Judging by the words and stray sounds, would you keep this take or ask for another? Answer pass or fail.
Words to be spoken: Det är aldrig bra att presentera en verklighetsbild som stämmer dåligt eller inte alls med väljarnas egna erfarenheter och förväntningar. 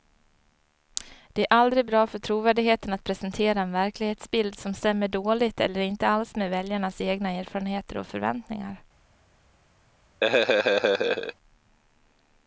fail